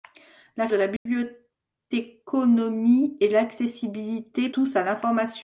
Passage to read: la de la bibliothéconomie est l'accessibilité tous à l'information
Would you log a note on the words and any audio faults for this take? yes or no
yes